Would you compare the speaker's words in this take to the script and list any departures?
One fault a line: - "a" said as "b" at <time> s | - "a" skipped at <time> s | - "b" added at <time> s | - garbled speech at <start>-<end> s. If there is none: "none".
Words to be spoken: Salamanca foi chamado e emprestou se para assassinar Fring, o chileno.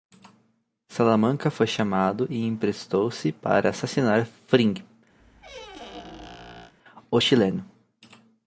none